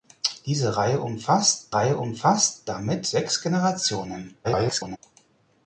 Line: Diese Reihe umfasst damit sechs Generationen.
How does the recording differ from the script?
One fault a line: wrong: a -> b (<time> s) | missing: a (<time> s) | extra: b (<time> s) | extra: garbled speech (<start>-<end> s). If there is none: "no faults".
extra: Reihe umfasst (1.7 s)
extra: garbled speech (4.4-5.0 s)